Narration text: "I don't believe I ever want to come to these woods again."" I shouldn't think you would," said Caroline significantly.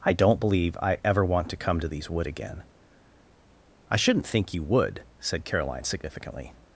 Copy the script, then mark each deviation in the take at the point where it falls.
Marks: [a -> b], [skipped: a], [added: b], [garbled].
"I don't believe I ever want to come to these [woods -> wood] again."" I shouldn't think you would," said Caroline significantly.